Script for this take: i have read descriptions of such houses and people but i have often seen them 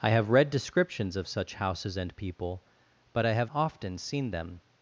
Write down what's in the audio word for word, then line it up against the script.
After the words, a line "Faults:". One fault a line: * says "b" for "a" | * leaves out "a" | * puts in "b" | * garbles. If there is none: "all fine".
i have read descriptions of such houses and people but i have often seen them
Faults:
all fine